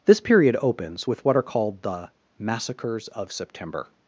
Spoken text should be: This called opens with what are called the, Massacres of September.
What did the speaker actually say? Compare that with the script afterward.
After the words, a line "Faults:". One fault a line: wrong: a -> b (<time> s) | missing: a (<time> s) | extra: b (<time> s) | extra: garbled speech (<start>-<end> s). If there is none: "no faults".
This period opens with what are called the, Massacres of September.
Faults:
wrong: called -> period (0.2 s)